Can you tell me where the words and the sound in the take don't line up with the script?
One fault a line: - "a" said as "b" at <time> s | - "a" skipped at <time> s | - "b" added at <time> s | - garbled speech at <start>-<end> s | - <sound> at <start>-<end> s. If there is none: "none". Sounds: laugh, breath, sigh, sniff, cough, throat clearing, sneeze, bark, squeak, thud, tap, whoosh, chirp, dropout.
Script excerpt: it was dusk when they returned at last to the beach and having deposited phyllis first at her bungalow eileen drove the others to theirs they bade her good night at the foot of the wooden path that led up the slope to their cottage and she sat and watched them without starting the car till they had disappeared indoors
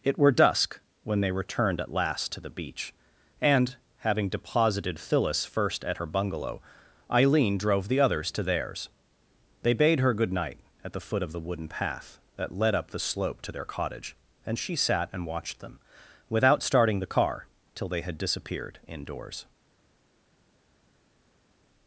- "was" said as "were" at 0.2 s